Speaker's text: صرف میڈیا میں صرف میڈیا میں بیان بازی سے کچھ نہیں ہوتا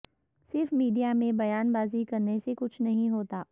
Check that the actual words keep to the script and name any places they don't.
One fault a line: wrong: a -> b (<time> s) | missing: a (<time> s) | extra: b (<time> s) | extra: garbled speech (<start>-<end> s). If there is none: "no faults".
missing: صرف میڈیا میں (1.3 s)
extra: کرنے (2.0 s)